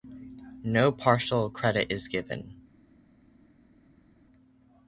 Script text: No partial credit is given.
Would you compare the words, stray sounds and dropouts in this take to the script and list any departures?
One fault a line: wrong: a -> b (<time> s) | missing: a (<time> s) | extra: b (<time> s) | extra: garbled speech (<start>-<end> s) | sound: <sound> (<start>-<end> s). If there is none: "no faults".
no faults